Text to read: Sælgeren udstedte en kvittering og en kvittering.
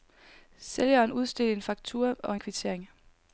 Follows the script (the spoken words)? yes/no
no